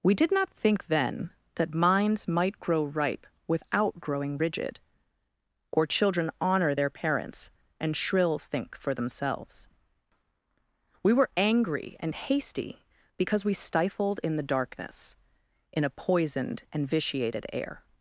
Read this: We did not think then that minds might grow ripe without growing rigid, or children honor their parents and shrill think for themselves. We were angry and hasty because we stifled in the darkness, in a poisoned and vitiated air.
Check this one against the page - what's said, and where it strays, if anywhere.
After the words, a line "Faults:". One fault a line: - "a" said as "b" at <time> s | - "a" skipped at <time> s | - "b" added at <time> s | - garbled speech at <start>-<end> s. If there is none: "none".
We did not think then that minds might grow ripe without growing rigid, or children honor their parents and shrill think for themselves. We were angry and hasty because we stifled in the darkness, in a poisoned and vitiated air.
Faults:
none